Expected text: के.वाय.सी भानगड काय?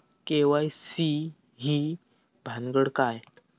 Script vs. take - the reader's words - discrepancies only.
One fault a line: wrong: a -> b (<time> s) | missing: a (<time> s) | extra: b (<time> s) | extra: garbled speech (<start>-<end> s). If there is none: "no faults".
extra: ही (1.6 s)